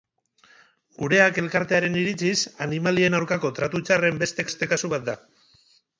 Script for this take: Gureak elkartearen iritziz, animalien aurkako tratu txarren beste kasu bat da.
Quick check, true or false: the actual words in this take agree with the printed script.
false